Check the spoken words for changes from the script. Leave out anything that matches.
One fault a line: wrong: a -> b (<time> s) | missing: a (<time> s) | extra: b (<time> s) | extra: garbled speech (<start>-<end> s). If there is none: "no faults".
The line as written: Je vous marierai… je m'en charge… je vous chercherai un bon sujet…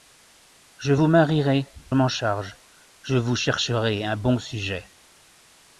missing: je (1.7 s)